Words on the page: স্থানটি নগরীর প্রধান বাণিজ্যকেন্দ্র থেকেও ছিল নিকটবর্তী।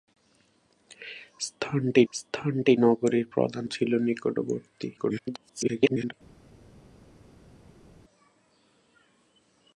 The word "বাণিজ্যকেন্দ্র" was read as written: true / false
false